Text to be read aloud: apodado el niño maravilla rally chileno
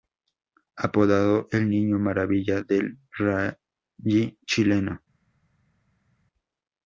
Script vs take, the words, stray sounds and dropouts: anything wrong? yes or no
yes